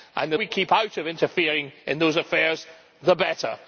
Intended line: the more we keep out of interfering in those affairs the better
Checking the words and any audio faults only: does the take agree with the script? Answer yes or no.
no